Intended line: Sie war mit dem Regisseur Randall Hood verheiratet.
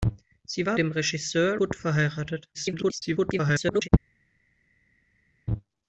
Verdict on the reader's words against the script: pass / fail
fail